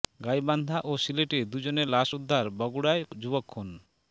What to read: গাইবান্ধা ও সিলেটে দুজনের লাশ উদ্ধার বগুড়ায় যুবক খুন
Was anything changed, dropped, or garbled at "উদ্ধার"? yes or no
no